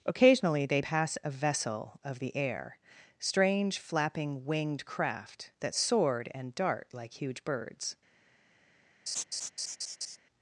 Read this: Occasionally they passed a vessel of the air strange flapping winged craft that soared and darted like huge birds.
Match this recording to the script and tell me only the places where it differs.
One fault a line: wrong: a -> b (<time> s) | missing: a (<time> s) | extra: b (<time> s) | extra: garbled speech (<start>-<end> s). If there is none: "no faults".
wrong: passed -> pass (0.8 s)
wrong: darted -> dart (6.6 s)